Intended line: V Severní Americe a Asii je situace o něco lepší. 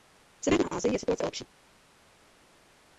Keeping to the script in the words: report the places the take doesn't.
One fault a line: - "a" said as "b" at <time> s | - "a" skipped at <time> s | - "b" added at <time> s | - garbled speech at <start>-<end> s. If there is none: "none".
- "Americe" skipped at 0.7 s
- "něco" skipped at 1.3 s